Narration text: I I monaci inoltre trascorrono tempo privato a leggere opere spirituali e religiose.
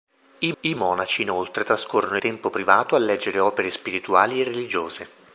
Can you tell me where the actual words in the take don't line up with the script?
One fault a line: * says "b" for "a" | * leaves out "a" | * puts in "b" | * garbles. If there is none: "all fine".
all fine